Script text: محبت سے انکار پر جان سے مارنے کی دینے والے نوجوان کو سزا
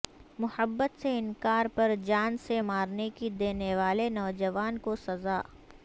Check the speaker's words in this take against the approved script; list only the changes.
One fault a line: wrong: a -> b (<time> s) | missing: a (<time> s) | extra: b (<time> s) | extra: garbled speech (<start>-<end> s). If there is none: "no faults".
no faults